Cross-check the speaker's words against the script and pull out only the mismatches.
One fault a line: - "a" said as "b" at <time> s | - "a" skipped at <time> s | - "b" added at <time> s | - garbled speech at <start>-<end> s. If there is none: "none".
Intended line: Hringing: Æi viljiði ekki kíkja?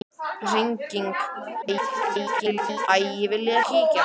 - garbled speech at 1.6-2.9 s
- "ekki" skipped at 3.6 s